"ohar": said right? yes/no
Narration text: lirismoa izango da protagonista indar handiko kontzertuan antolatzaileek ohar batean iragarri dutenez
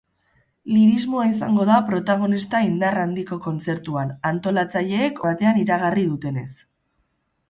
no